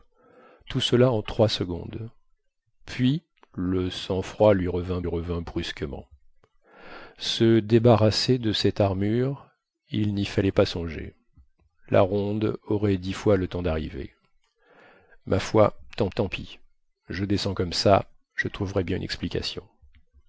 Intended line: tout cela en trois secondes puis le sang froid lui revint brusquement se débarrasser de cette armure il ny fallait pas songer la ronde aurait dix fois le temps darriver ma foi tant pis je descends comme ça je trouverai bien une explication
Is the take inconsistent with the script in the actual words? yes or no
yes